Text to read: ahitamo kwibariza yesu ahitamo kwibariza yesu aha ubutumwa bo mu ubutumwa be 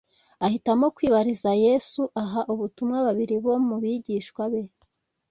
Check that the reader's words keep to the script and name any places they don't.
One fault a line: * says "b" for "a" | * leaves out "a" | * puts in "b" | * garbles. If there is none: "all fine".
* leaves out "ahitamo kwibariza yesu"
* puts in "babiri"
* says "bigishwa" for "ubutumwa"